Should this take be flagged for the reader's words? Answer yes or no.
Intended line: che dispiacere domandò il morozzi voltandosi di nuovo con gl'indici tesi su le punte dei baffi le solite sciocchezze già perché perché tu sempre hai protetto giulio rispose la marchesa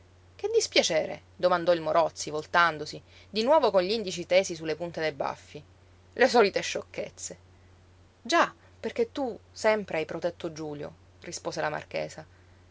yes